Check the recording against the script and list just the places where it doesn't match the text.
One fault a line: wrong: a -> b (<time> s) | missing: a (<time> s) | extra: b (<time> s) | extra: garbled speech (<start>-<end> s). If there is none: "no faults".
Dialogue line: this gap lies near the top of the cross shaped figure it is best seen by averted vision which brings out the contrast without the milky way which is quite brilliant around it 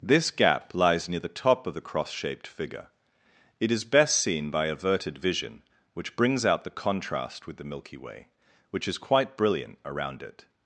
wrong: without -> with (7.5 s)